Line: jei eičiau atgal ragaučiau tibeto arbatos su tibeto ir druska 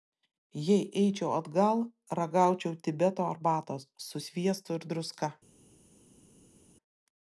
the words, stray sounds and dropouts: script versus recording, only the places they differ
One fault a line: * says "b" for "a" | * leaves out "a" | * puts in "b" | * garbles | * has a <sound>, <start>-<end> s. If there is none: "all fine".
* says "sviestu" for "tibeto"